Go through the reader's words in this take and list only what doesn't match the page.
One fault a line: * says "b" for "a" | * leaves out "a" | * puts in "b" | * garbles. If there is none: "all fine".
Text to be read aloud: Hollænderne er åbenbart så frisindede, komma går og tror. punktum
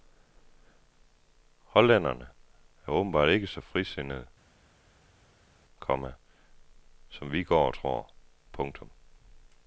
* puts in "ikke"
* puts in "som vi"